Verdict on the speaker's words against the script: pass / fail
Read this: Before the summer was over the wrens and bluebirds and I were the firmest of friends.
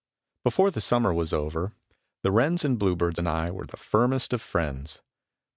pass